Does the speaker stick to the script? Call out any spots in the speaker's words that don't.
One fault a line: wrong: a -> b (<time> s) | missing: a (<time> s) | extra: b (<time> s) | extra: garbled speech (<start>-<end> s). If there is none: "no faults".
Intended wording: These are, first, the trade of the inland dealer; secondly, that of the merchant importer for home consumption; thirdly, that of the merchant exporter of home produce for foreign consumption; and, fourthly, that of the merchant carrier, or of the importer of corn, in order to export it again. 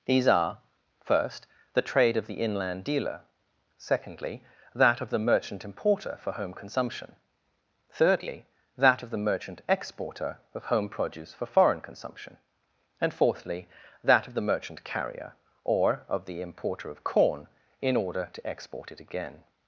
no faults